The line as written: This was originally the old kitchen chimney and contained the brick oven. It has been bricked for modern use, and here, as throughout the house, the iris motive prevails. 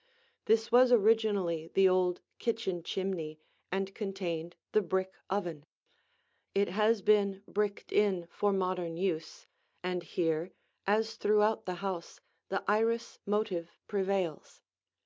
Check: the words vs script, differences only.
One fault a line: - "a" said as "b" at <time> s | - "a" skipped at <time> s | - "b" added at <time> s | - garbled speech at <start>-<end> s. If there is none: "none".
- "in" added at 7.9 s